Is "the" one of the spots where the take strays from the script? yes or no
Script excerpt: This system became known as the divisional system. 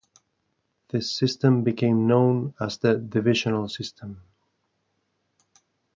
no